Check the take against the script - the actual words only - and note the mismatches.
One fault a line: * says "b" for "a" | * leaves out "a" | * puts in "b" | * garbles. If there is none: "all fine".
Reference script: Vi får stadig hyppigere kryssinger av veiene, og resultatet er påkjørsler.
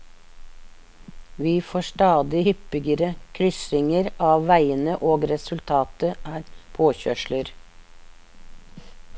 all fine